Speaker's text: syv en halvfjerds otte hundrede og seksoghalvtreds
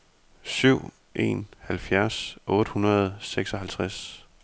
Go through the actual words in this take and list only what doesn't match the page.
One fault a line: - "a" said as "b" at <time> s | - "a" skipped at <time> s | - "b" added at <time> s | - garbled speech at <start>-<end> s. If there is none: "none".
none